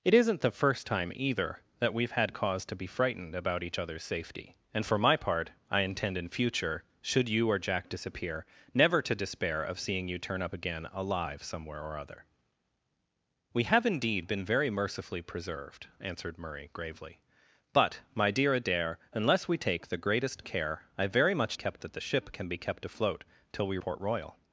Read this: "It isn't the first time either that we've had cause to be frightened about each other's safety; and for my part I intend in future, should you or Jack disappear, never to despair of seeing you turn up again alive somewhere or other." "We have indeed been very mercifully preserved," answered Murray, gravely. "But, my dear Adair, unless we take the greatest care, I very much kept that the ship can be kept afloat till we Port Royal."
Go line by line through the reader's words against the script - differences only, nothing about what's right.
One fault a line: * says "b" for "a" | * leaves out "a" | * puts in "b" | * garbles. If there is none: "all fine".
all fine